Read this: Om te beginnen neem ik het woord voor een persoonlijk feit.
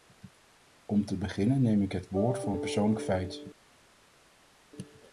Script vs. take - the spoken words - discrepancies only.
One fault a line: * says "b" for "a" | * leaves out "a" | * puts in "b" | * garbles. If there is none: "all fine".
all fine